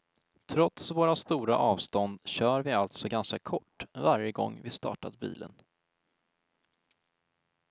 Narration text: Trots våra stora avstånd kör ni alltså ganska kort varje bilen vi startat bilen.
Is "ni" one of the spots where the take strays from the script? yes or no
yes